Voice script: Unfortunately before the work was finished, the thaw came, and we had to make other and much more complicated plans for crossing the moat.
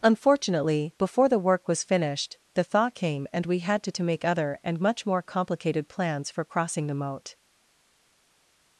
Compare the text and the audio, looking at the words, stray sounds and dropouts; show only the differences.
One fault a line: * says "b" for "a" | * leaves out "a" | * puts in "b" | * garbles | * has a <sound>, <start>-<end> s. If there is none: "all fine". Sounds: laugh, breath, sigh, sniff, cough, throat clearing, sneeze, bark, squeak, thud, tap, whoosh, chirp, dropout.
* puts in "to"